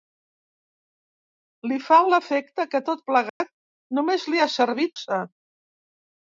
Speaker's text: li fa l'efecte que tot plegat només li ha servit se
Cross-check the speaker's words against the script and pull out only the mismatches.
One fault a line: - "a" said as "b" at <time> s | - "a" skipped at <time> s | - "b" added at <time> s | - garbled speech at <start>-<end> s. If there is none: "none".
none